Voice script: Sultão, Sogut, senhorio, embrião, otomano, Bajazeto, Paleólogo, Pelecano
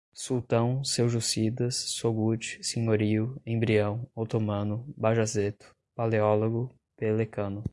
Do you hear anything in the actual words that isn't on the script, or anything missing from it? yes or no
yes